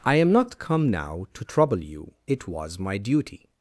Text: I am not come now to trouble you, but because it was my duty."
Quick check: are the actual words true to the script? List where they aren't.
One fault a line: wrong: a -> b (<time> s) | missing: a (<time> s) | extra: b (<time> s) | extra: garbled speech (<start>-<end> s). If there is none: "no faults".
missing: but because (2.1 s)